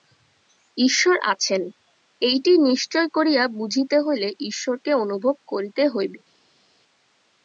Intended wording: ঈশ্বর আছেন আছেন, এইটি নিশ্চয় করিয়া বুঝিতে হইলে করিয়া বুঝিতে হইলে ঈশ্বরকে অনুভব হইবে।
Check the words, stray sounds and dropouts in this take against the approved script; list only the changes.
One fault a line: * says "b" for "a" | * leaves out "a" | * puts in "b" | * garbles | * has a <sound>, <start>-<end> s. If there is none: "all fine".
* leaves out "আছেন"
* leaves out "করিয়া বুঝিতে হইলে"
* puts in "করিতে"